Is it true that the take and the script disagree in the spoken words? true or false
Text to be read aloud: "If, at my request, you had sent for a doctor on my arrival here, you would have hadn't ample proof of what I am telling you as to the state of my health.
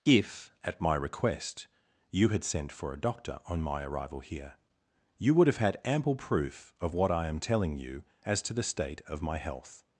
true